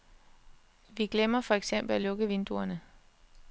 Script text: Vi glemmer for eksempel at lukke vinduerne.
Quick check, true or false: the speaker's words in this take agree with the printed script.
true